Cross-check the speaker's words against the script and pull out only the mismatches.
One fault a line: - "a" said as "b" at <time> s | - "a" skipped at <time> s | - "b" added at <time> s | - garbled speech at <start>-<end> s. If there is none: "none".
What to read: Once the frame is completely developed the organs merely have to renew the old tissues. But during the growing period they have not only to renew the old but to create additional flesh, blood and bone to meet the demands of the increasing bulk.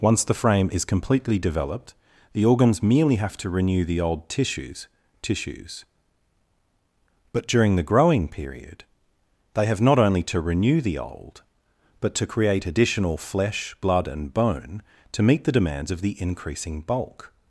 - "tissues" added at 5.2 s